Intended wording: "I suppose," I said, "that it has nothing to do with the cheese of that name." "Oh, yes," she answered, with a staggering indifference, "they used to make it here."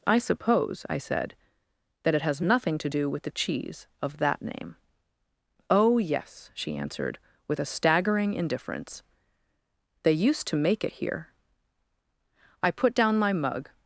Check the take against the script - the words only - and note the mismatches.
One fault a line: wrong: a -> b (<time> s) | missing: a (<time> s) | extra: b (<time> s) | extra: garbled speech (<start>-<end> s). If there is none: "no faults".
extra: I put down my mug (12.6 s)